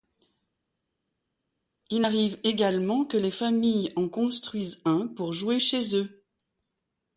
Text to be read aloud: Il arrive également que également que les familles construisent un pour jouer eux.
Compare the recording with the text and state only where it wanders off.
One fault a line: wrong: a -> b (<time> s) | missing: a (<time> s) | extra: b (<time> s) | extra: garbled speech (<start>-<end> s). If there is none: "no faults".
missing: également que (3.2 s)
extra: en (4.0 s)
extra: chez (5.6 s)